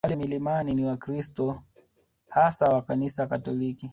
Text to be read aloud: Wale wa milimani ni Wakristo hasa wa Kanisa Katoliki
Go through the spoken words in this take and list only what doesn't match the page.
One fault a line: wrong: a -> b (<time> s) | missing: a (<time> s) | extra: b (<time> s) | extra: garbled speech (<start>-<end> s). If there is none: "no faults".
missing: wa (0.2 s)